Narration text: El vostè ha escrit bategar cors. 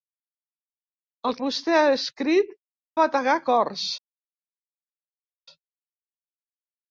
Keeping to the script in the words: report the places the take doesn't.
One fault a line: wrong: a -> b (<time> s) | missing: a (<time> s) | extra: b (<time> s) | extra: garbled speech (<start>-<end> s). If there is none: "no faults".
no faults